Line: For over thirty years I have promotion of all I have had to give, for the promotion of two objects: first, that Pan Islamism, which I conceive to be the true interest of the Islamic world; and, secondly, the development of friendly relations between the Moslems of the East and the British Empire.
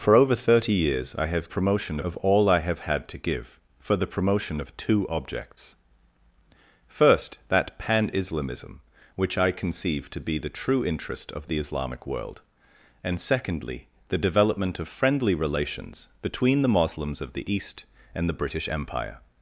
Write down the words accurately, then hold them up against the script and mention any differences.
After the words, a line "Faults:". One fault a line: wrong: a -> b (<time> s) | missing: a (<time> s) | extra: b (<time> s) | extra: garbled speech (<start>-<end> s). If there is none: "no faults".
For over thirty years I have promotion of all I have had to give, for the promotion of two objects: first, that Pan Islamism, which I conceive to be the true interest of the Islamic world; and, secondly, the development of friendly relations between the Moslems of the East and the British Empire.
Faults:
no faults